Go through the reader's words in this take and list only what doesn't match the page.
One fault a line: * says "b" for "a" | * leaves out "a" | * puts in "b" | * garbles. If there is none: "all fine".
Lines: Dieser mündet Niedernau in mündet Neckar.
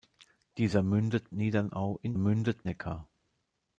all fine